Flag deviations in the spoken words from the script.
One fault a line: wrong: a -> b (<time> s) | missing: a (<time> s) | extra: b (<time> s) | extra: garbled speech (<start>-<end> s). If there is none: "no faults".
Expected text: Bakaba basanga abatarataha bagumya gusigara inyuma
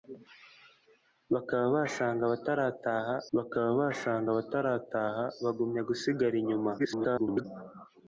extra: bakaba basanga abatarataha (3.4 s)
extra: garbled speech (6.8-7.5 s)